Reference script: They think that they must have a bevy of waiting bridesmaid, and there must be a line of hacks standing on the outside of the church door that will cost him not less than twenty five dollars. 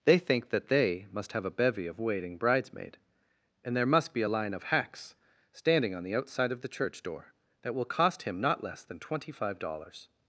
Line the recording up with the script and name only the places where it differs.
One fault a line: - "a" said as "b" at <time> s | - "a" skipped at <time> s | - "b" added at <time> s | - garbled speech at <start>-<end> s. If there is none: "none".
none